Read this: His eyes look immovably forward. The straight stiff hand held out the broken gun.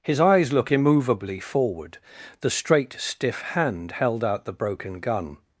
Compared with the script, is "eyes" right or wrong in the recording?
right